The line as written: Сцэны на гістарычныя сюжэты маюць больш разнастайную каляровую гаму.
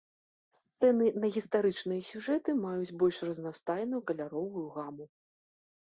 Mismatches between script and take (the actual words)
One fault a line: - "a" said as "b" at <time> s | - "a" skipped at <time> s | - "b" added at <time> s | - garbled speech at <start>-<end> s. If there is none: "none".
none